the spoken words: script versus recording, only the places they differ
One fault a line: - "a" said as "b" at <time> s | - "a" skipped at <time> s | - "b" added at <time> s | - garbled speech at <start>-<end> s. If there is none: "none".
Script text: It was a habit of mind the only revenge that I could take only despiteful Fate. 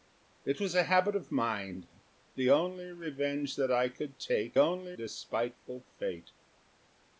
none